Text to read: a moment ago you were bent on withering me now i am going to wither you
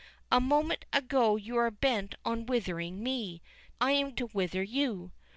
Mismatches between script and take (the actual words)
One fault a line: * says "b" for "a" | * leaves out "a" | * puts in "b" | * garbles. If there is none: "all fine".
* leaves out "now"
* leaves out "going"